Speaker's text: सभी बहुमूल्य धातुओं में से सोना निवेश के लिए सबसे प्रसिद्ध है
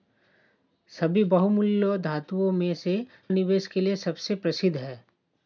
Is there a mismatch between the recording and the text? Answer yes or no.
yes